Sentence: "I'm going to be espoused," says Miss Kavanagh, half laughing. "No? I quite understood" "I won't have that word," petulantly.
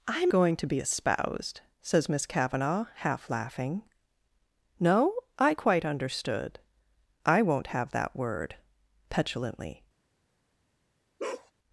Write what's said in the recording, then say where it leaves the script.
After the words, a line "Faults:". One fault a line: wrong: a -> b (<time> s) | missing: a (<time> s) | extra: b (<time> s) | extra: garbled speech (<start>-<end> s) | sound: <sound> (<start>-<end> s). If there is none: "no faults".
"I'm going to be espoused," says Miss Kavanagh, half laughing. "No? I quite understood" "I won't have that word," petulantly.
Faults:
sound: bark (11.2-11.5 s)